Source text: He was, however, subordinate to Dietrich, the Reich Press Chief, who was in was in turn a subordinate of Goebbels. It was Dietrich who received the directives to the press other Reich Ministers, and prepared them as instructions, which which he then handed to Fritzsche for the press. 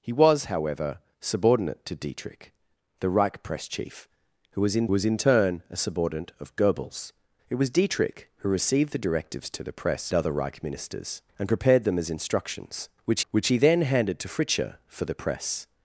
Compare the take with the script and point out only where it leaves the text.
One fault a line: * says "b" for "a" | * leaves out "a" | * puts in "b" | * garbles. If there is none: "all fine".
all fine